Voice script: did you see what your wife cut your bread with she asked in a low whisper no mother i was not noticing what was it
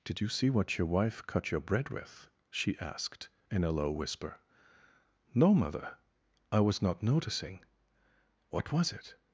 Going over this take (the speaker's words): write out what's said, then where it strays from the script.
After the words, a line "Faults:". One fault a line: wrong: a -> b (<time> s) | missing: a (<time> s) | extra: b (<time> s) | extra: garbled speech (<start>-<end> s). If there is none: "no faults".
did you see what your wife cut your bread with she asked in a low whisper no mother i was not noticing what was it
Faults:
no faults